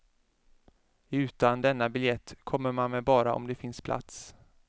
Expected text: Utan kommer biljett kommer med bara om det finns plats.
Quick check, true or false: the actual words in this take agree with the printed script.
false